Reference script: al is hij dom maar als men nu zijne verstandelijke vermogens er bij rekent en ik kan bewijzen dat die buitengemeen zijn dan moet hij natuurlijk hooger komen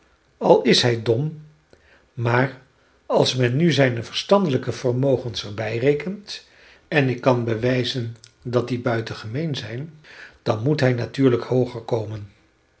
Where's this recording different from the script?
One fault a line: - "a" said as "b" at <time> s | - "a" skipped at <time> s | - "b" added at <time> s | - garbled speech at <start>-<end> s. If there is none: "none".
none